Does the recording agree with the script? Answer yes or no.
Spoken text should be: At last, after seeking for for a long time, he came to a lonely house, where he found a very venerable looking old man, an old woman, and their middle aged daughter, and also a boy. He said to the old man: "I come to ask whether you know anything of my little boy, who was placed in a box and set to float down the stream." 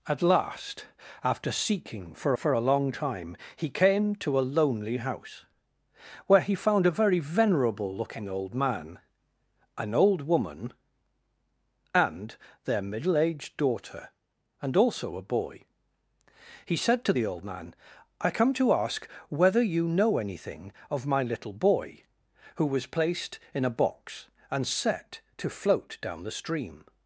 yes